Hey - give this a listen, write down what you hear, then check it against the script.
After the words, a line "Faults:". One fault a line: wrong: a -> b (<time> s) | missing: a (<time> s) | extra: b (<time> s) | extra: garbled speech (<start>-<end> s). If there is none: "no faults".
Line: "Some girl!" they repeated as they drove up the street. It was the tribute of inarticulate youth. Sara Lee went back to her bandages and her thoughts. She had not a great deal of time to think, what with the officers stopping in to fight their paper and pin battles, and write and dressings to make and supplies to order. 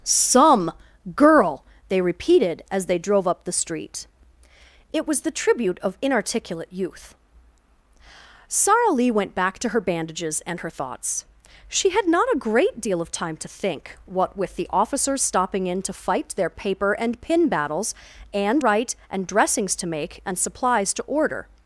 "Some girl!" they repeated as they drove up the street. It was the tribute of inarticulate youth. Sara Lee went back to her bandages and her thoughts. She had not a great deal of time to think, what with the officers stopping in to fight their paper and pin battles, and write and dressings to make and supplies to order.
Faults:
no faults